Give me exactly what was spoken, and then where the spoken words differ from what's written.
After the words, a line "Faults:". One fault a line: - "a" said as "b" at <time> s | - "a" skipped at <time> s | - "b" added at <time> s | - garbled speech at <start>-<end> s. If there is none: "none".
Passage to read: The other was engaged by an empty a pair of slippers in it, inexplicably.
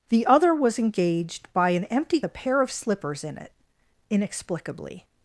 The other was engaged by an empty a pair of slippers in it, inexplicably.
Faults:
none